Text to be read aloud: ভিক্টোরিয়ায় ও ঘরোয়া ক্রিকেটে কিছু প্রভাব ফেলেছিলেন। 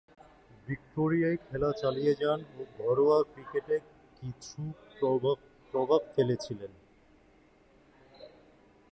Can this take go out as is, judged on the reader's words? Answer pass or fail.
fail